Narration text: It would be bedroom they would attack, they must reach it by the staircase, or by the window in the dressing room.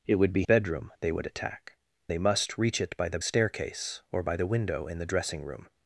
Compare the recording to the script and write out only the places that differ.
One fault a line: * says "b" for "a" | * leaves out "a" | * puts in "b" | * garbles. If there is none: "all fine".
all fine